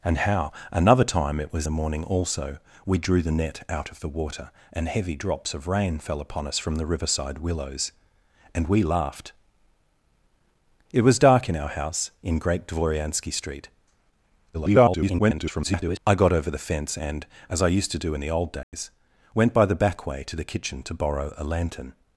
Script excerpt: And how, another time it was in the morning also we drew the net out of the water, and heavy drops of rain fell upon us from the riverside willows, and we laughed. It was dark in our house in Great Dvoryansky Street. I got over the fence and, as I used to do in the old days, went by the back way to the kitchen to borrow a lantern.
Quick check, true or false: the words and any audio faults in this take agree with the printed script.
false